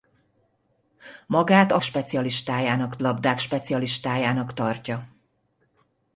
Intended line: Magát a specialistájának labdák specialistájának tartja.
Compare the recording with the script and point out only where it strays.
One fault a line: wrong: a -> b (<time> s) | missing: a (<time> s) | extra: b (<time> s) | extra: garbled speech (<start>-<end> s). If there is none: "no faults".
no faults